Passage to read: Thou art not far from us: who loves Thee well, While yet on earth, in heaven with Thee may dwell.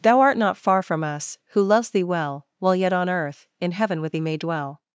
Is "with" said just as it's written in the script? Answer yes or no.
yes